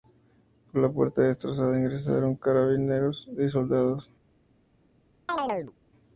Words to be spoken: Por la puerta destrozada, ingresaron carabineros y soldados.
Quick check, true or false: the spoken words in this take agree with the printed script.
true